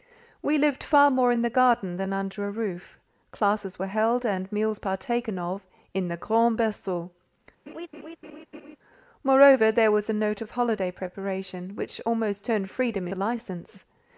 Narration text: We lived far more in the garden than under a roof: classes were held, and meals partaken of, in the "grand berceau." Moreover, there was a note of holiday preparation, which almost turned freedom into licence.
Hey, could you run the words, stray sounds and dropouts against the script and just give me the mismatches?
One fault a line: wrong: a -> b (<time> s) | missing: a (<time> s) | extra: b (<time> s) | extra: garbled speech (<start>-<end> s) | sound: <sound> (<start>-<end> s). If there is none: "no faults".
sound: laugh (7.7-8.8 s)
missing: into (13.1 s)